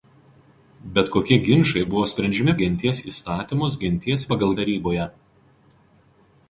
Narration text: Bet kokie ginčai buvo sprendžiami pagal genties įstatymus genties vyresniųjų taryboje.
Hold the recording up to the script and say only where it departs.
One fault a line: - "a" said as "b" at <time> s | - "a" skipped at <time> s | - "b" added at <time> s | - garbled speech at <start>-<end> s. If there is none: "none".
- "pagal" skipped at 2.5 s
- "vyresniųjų" said as "pagal" at 4.3 s